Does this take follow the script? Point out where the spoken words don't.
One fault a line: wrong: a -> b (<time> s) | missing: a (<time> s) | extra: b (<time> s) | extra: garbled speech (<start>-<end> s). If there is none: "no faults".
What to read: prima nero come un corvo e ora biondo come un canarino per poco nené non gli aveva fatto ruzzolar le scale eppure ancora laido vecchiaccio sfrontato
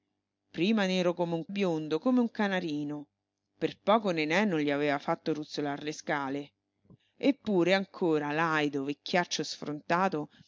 missing: corvo e ora (1.5 s)